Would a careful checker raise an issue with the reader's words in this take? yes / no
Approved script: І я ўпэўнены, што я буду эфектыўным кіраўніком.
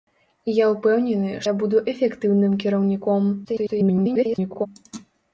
yes